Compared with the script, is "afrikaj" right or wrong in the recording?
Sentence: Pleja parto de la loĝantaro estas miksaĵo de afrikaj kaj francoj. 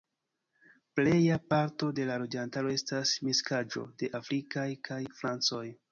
right